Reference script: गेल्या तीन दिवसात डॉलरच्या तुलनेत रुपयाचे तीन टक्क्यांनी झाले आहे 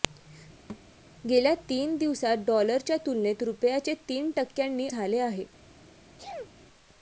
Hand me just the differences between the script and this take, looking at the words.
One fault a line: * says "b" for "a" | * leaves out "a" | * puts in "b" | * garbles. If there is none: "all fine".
all fine